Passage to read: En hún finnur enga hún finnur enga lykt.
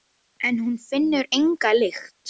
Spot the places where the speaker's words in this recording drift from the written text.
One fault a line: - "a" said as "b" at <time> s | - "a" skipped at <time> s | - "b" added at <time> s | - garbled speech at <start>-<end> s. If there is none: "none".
- "hún finnur enga" skipped at 1.7 s